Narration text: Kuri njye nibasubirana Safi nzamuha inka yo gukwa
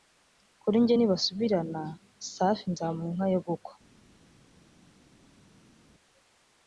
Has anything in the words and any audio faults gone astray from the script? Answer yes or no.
no